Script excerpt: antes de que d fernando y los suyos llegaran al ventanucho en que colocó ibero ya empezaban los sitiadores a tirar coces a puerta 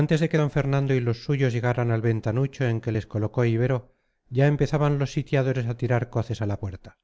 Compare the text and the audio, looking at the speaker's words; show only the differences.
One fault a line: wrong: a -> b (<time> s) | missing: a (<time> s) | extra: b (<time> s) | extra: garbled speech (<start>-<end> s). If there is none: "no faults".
extra: les (2.9 s)
extra: la (6.5 s)